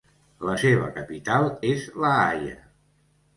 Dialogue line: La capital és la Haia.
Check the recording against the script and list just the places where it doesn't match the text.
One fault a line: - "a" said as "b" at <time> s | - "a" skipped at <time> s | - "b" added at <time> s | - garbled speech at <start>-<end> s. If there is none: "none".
- "seva" added at 0.6 s